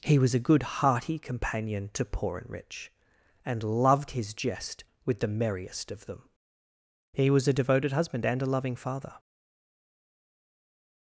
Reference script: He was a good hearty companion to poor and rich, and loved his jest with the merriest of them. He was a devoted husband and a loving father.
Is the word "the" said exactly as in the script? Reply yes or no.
yes